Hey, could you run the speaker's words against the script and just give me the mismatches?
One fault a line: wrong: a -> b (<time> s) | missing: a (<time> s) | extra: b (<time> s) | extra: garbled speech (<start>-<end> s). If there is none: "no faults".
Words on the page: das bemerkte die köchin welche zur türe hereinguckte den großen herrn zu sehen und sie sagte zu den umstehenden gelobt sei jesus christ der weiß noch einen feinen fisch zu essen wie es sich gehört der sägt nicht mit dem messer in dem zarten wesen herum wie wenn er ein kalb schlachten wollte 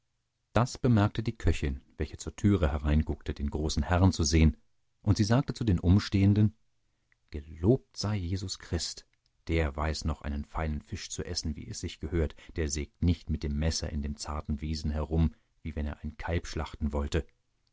no faults